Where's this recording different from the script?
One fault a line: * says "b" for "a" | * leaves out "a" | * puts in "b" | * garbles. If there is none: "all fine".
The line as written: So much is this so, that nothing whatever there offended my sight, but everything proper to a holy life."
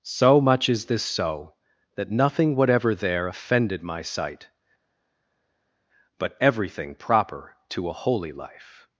all fine